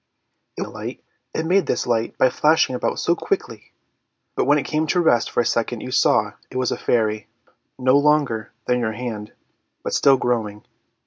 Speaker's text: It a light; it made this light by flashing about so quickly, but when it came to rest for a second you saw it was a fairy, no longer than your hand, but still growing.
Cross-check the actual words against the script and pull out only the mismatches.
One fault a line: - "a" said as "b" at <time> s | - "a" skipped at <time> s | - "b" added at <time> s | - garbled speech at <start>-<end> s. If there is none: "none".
none